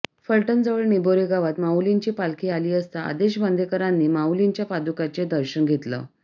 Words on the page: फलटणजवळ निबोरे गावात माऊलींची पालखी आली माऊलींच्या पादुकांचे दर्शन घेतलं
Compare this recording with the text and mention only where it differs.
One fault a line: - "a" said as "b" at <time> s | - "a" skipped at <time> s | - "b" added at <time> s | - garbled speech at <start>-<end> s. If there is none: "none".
- "असता आदेश बांदेकरांनी" added at 2.7 s